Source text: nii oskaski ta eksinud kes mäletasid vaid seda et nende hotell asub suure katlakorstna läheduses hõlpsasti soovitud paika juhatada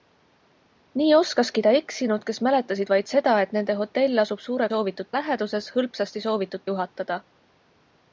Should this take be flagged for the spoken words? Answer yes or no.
yes